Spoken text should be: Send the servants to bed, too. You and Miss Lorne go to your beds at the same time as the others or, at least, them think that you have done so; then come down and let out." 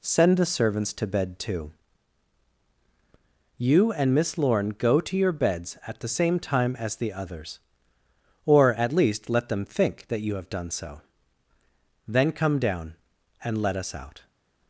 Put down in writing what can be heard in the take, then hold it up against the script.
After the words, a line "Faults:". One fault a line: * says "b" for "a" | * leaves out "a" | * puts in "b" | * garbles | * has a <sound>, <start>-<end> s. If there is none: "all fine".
Send the servants to bed, too. You and Miss Lorne go to your beds at the same time as the others or, at least, let them think that you have done so; then come down and let us out."
Faults:
* puts in "let"
* puts in "us"